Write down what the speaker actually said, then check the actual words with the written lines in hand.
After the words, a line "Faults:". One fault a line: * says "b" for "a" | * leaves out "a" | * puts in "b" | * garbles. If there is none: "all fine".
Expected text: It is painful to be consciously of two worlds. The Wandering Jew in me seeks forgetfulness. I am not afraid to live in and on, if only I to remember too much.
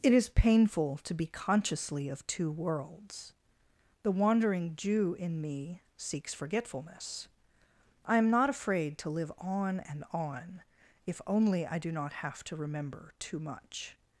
It is painful to be consciously of two worlds. The Wandering Jew in me seeks forgetfulness. I am not afraid to live on and on, if only I do not have to remember too much.
Faults:
* says "on" for "in"
* puts in "do not have"